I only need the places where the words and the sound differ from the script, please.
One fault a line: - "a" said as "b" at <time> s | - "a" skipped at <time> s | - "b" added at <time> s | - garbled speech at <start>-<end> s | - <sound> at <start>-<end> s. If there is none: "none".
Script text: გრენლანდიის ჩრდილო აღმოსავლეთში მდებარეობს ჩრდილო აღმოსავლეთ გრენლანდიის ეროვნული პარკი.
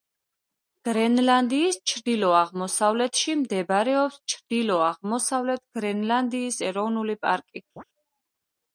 - chirp at 7.8-7.8 s